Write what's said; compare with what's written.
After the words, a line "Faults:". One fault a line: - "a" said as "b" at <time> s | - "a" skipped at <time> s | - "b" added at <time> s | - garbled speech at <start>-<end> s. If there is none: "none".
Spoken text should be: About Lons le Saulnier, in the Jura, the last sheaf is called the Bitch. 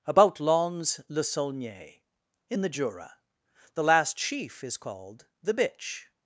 About Lons le Saulnier, in the Jura, the last sheaf is called the Bitch.
Faults:
none